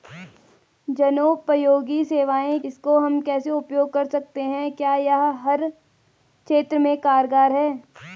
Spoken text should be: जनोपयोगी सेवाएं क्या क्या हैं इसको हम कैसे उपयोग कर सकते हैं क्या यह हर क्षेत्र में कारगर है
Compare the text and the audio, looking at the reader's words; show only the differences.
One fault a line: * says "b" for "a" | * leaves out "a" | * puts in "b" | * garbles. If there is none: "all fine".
* leaves out "क्या क्या हैं"